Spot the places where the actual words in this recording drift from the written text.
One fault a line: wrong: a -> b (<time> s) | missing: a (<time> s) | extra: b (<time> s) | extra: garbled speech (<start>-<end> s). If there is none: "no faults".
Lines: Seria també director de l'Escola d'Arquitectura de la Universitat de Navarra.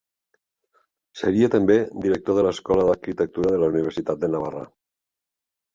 no faults